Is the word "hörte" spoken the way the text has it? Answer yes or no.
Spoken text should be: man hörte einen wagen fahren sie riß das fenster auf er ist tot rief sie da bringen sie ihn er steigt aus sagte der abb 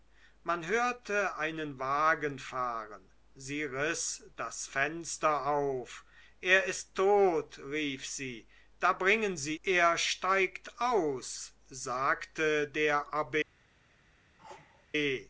yes